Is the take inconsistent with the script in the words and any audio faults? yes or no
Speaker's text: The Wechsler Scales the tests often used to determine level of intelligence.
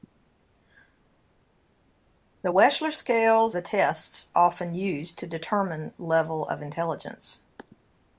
no